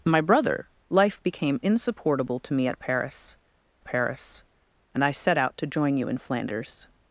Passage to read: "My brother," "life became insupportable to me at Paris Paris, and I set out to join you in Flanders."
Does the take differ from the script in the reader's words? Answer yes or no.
no